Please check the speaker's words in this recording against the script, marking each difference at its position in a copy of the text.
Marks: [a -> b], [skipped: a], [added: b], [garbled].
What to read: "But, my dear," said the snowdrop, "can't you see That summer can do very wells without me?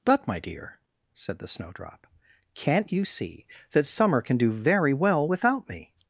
"But, my dear," said the snowdrop, "can't you see That summer can do very [wells -> well] without me?